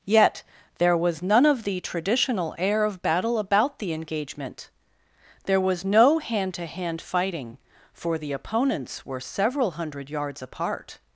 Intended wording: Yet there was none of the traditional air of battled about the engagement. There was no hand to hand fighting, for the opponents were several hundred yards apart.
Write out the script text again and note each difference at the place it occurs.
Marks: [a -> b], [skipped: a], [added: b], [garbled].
Yet there was none of the traditional air of [battled -> battle] about the engagement. There was no hand to hand fighting, for the opponents were several hundred yards apart.